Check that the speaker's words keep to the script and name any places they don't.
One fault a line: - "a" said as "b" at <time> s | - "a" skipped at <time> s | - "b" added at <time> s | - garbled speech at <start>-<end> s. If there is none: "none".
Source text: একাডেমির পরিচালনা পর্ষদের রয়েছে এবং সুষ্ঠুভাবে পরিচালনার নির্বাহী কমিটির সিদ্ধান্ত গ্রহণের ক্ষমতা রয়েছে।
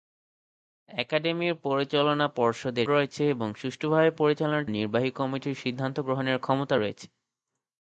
none